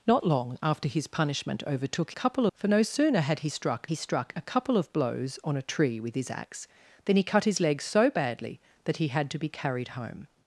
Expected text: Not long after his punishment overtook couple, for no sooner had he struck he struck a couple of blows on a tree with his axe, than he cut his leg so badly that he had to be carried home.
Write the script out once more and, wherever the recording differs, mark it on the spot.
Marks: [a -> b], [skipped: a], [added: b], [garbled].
Not long after his punishment overtook couple, for no sooner had he struck he struck a couple of blows on a tree with his axe, than he cut his leg so badly that he had to be carried home.